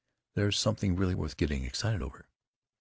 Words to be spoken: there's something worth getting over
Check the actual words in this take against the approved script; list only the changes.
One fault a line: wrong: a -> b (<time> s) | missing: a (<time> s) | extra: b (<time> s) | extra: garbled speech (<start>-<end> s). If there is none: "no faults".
extra: really (0.9 s)
extra: excited (1.6 s)